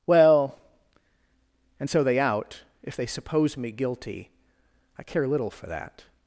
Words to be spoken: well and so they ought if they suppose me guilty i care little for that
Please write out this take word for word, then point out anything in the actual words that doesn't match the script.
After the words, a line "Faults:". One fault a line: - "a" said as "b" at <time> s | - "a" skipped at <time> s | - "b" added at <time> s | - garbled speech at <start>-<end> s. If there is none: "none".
well and so they out if they suppose me guilty i care little for that
Faults:
- "ought" said as "out" at 2.2 s